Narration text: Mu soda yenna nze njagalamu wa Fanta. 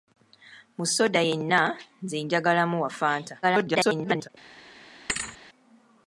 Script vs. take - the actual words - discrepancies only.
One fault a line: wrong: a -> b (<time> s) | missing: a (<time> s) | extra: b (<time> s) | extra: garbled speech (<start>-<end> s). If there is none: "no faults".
extra: garbled speech (3.4-4.3 s)